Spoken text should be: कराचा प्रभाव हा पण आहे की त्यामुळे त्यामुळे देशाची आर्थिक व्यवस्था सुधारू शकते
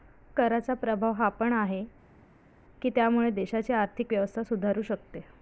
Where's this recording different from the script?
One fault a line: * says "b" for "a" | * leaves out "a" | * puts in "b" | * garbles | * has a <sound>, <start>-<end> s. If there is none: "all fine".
* leaves out "त्यामुळे"